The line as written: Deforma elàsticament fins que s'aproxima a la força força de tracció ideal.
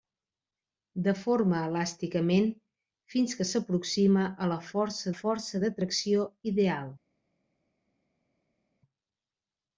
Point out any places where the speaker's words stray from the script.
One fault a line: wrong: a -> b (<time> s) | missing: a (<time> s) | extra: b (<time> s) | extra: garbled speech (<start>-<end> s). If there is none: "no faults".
no faults